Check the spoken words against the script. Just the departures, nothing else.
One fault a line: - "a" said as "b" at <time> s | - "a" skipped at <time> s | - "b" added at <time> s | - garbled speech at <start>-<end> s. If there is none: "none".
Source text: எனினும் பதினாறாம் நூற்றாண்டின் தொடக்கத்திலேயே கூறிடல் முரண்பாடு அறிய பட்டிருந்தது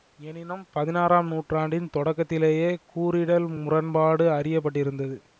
none